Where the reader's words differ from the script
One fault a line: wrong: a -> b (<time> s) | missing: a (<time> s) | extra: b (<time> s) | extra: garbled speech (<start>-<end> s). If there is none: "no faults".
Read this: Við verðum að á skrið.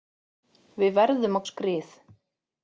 no faults